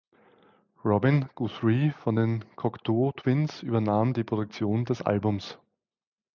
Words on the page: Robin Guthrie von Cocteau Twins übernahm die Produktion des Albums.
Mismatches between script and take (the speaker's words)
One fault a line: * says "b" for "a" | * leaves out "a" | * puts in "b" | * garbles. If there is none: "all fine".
* puts in "den"